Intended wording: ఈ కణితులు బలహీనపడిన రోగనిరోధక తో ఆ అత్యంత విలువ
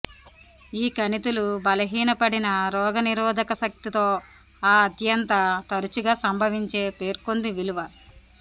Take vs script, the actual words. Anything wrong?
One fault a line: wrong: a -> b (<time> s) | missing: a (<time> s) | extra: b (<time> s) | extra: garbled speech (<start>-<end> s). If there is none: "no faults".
extra: శక్తి (3.6 s)
extra: తరచుగా సంభవించే పేర్కొంది (5.7 s)